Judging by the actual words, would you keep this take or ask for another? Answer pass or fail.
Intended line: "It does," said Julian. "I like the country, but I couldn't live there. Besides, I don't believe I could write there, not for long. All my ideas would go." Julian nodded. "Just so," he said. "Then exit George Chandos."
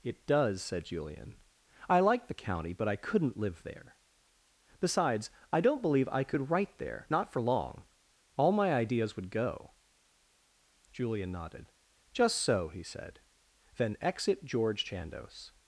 fail